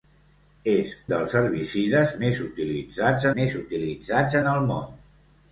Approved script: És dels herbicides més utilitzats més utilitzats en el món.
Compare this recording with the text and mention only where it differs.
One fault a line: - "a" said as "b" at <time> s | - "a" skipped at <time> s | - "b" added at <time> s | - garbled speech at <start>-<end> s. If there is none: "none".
none